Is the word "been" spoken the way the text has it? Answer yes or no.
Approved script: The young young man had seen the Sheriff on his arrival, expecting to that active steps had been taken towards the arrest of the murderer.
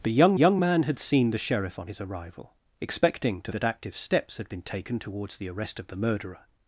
yes